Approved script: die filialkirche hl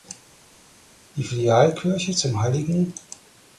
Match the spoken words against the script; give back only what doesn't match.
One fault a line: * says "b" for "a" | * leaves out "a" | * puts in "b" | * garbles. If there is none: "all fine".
* puts in "zum"